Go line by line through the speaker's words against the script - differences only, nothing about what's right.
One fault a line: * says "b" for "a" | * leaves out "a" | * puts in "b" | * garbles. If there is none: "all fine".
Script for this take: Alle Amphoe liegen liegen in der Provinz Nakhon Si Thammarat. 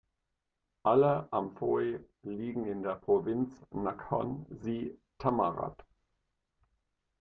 * leaves out "liegen"